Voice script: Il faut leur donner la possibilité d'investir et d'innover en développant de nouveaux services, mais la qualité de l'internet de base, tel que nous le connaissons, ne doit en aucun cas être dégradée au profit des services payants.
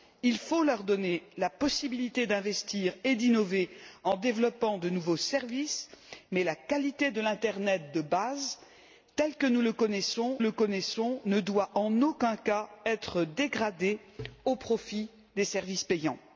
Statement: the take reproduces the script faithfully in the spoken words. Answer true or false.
false